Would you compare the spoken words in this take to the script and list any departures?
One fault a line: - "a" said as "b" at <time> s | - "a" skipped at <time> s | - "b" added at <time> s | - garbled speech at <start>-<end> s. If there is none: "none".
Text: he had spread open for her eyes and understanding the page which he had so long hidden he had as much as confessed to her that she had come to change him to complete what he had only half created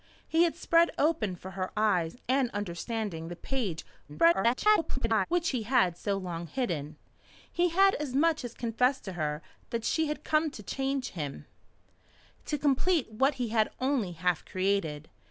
- garbled speech at 4.1-5.3 s